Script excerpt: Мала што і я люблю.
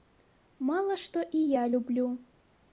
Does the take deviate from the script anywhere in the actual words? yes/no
no